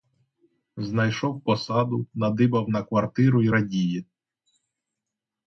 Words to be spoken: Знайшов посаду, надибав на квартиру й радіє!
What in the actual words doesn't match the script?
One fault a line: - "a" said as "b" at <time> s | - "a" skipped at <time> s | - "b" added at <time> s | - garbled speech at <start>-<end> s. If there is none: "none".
none